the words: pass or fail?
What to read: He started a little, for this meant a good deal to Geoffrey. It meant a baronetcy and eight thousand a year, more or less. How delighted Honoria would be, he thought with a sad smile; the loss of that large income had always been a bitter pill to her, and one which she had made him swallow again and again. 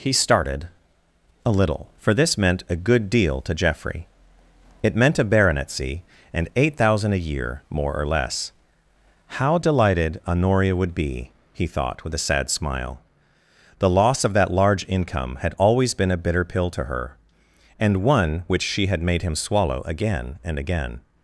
pass